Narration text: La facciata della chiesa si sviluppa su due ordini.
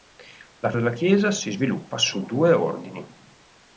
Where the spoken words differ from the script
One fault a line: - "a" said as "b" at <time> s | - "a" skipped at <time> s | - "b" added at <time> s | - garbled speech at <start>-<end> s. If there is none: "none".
- "facciata" skipped at 0.7 s